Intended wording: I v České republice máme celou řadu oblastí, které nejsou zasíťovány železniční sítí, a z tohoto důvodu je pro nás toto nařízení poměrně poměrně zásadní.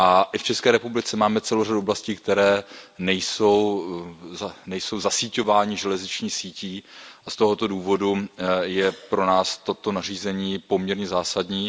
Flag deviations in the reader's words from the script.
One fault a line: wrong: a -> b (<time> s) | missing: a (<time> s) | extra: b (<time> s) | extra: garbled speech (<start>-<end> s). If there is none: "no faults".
missing: poměrně (11.1 s)